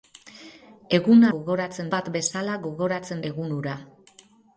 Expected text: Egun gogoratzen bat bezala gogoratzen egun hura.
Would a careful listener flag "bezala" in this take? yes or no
no